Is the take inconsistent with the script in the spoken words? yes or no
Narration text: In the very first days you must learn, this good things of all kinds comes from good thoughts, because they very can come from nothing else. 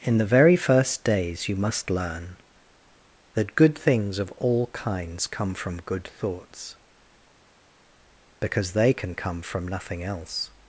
yes